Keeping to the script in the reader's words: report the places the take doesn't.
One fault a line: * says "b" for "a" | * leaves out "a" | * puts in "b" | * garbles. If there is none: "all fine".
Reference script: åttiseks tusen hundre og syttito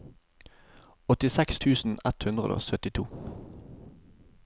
* puts in "ett"